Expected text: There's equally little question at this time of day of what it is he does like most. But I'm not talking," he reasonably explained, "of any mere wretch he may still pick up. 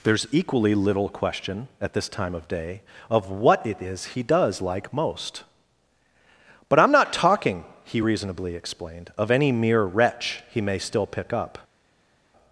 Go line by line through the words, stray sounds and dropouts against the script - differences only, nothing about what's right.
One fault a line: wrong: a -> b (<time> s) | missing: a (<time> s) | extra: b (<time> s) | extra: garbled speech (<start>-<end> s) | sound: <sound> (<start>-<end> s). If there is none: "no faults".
no faults